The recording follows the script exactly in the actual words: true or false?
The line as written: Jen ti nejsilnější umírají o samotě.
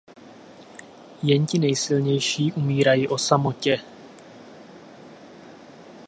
true